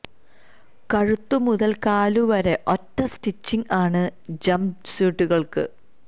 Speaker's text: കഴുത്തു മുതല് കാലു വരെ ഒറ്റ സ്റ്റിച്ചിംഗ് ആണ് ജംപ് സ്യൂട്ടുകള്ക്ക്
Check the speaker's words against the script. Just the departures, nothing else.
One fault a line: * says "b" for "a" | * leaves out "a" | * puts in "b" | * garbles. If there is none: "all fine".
all fine